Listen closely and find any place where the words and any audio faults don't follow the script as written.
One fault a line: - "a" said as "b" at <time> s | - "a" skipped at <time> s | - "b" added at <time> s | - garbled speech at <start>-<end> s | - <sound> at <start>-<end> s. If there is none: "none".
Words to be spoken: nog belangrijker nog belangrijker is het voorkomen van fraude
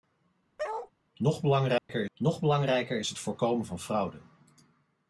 - bark at 0.6-0.9 s
- dropout at 1.8-1.9 s